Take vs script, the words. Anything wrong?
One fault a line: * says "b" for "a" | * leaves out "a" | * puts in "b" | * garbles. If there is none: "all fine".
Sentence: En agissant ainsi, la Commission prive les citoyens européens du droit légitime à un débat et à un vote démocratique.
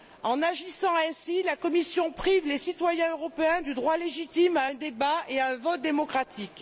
all fine